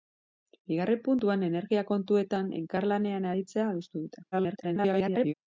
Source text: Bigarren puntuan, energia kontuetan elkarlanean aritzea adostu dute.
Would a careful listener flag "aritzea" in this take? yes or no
no